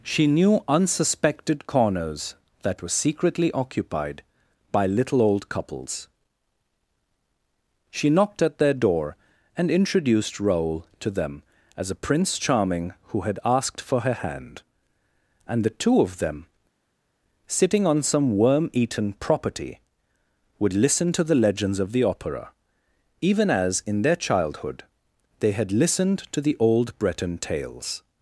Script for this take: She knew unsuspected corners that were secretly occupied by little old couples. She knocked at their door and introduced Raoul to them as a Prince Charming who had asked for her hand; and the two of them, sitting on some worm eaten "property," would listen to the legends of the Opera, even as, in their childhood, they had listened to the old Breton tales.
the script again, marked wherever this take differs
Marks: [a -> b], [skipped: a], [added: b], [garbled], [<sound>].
She knew unsuspected corners that were secretly occupied by little old couples. She knocked at their door and introduced Raoul to them as a Prince Charming who had asked for her hand; and the two of them, sitting on some worm eaten "property," would listen to the legends of the Opera, even as, in their childhood, they had listened to the old Breton tales.